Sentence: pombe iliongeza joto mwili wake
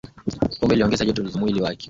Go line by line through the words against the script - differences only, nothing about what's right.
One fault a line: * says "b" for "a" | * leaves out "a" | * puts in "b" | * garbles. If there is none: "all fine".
all fine